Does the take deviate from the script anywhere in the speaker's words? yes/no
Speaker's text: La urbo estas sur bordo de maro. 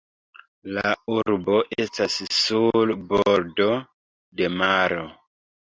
no